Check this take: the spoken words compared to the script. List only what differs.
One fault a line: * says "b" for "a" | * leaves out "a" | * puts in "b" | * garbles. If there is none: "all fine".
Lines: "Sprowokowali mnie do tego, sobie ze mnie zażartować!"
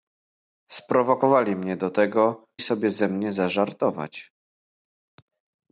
all fine